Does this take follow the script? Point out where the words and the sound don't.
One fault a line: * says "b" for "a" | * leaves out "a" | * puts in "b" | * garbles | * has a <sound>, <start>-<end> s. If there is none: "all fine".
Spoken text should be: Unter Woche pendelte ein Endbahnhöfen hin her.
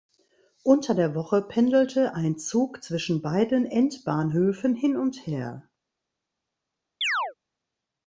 * puts in "der"
* puts in "Zug zwischen beiden"
* puts in "und"
* has a chirp, 7.0-7.3 s